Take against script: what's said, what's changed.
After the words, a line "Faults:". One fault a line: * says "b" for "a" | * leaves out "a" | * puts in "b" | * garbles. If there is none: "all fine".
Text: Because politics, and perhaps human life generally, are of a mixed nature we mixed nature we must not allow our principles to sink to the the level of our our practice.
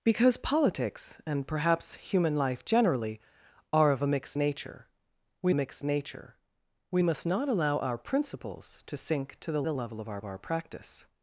Because politics, and perhaps human life generally, are of a mixed nature we mixed nature we must not allow our principles to sink to the the level of our our practice.
Faults:
all fine